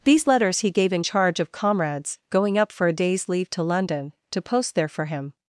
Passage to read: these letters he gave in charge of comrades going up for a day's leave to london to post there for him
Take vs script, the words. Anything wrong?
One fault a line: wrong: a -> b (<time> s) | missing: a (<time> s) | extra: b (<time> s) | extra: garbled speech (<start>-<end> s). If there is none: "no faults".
no faults